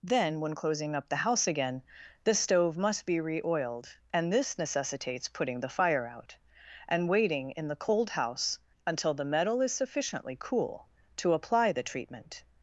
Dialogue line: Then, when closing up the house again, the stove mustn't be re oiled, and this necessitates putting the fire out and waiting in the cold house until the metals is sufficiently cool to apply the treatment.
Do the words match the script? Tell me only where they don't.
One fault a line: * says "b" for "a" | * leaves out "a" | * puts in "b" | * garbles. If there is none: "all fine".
* says "must" for "mustn't"
* says "metal" for "metals"